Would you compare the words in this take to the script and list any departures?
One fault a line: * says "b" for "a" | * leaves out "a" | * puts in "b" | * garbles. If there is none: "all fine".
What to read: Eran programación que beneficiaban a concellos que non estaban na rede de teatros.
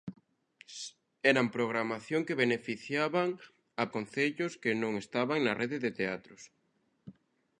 all fine